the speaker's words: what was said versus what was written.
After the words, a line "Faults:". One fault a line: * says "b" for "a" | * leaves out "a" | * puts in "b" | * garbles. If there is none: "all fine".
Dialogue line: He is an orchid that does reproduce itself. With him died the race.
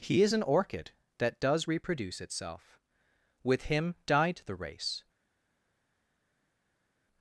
He is an orchid that does reproduce itself. With him died the race.
Faults:
all fine